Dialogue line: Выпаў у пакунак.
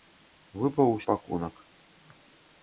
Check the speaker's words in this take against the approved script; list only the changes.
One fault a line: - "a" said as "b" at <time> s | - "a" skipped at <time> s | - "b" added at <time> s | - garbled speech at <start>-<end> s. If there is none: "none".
none